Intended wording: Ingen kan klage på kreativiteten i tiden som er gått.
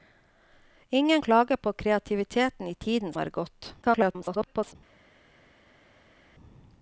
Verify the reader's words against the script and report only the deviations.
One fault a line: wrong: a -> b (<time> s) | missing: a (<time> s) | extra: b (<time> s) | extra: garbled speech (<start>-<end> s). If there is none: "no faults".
missing: kan (1.2 s)
missing: som (3.1 s)
extra: garbled speech (3.8-4.8 s)